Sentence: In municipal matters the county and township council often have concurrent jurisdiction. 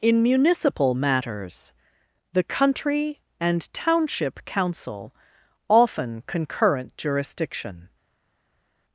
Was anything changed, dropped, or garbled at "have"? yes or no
yes